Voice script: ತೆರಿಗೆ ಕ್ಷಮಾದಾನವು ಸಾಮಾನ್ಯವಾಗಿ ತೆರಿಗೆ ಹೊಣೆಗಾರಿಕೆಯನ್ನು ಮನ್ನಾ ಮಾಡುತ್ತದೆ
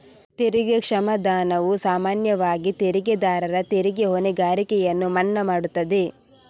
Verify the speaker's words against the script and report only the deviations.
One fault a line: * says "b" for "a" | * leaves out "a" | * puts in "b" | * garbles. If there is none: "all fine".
* puts in "ತೆರಿಗೆದಾರರ"